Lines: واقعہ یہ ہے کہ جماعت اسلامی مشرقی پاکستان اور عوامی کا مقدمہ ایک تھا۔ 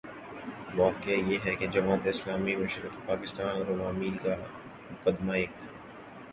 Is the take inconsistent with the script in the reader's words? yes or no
no